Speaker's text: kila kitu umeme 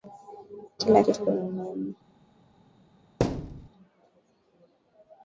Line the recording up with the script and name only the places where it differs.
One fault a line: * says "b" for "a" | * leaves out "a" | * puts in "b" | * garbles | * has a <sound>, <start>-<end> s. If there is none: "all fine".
* has a thud, 3.2-3.7 s